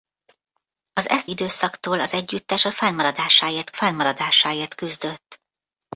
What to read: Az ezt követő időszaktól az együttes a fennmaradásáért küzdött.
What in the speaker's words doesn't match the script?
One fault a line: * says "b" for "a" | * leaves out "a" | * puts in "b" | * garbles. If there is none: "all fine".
* leaves out "követő"
* puts in "fennmaradásáért"